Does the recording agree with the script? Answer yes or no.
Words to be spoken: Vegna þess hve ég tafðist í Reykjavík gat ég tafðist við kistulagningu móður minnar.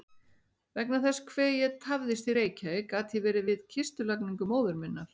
no